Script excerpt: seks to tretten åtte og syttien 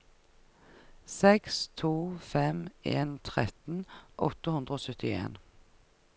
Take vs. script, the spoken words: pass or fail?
fail